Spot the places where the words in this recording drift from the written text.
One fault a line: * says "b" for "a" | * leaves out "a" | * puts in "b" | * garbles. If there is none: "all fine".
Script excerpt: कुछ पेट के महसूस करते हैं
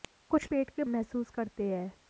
all fine